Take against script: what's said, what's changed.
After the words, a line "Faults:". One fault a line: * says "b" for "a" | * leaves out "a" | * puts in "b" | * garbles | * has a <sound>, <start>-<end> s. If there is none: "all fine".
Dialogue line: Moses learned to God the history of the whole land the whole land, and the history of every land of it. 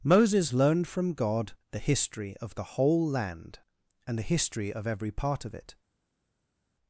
Moses learned from God the history of the whole land, and the history of every part of it.
Faults:
* says "from" for "to"
* leaves out "the whole land"
* says "part" for "land"